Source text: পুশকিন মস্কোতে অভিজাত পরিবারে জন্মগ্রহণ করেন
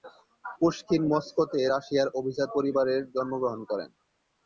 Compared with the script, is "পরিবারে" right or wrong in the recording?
right